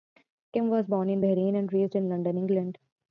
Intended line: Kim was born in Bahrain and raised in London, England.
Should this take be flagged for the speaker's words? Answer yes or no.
no